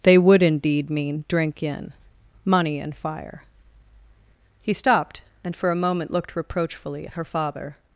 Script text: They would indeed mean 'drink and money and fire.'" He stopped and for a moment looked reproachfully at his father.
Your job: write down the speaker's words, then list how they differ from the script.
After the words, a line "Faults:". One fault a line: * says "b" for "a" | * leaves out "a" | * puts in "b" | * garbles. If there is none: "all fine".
They would indeed mean 'drink in money and fire.'" He stopped and for a moment looked reproachfully at her father.
Faults:
* says "in" for "and"
* says "her" for "his"